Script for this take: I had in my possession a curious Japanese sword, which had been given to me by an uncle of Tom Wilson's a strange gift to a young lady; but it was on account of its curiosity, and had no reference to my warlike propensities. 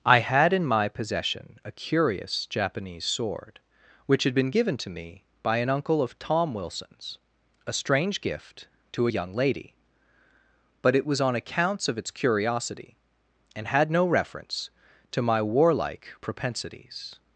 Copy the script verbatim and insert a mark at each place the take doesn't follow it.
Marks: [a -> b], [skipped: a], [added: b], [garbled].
I had in my possession a curious Japanese sword, which had been given to me by an uncle of Tom Wilson's a strange gift to a young lady; but it was on [account -> accounts] of its curiosity, and had no reference to my warlike propensities.